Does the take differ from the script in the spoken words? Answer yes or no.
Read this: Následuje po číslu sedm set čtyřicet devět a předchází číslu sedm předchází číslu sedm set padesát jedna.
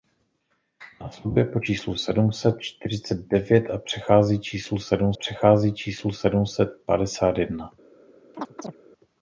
no